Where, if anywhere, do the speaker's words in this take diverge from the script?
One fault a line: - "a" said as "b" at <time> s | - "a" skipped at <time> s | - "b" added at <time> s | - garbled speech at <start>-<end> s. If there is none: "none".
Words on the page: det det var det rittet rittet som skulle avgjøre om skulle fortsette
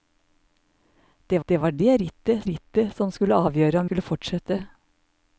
none